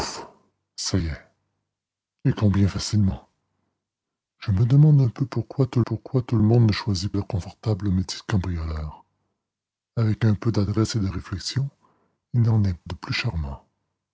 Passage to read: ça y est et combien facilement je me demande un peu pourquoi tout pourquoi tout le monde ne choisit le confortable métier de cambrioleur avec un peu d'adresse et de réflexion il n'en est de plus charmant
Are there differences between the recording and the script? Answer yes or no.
no